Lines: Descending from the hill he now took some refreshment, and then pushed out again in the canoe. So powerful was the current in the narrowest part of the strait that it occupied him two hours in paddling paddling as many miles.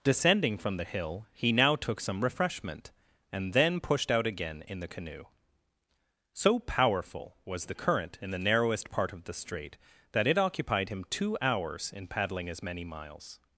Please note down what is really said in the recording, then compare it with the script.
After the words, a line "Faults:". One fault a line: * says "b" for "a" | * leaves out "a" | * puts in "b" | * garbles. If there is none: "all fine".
Descending from the hill he now took some refreshment, and then pushed out again in the canoe. So powerful was the current in the narrowest part of the strait that it occupied him two hours in paddling as many miles.
Faults:
* leaves out "paddling"